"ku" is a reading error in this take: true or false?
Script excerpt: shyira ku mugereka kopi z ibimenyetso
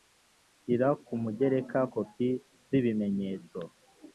false